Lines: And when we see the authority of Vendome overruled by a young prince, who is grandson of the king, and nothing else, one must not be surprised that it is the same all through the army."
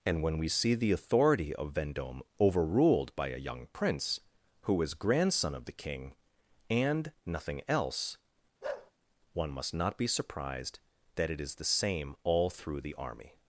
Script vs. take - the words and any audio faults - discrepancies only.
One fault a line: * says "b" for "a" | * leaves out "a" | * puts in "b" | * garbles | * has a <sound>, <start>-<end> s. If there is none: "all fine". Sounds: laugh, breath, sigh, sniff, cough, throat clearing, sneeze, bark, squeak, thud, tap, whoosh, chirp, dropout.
* has a bark, 8.6-8.9 s